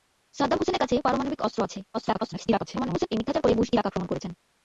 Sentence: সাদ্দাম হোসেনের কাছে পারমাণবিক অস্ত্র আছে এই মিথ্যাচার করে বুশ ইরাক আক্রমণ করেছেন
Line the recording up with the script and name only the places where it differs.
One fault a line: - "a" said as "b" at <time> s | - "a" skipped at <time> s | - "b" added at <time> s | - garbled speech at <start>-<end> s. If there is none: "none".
- garbled speech at 1.9-3.1 s